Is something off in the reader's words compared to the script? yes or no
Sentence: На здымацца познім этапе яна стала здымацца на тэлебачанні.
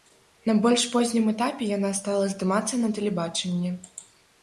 yes